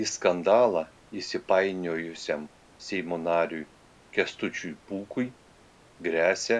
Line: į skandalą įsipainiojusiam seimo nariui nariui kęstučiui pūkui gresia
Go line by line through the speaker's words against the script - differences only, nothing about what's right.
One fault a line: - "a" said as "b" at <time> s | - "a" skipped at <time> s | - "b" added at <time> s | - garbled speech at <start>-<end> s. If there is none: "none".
- "nariui" skipped at 3.6 s